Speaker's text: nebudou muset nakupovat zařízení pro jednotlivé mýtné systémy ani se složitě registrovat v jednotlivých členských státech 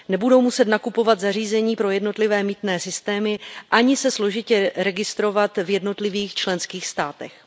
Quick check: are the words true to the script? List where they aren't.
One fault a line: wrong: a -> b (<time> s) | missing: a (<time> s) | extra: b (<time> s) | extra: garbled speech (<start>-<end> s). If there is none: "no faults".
no faults